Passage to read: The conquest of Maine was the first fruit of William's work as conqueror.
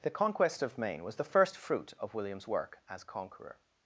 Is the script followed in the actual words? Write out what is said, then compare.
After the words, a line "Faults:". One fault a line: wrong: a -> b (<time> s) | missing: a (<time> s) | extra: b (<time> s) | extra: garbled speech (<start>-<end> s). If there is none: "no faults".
The conquest of Maine was the first fruit of William's work as conqueror.
Faults:
no faults